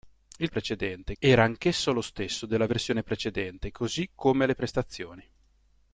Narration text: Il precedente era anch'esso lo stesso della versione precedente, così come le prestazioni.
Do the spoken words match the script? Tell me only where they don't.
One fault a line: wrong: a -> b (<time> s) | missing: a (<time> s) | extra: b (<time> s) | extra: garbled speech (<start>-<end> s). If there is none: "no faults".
no faults